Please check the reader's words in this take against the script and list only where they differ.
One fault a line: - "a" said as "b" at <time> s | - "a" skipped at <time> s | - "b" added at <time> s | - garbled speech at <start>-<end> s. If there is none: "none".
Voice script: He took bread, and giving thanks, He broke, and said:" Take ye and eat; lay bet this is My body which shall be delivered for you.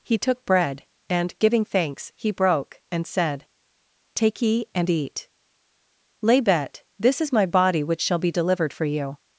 none